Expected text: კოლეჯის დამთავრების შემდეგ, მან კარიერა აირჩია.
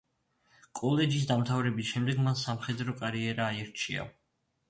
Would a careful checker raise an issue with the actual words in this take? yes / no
yes